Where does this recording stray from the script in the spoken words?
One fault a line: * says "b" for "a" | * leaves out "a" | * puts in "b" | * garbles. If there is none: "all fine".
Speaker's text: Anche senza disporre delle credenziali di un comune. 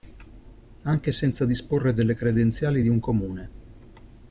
all fine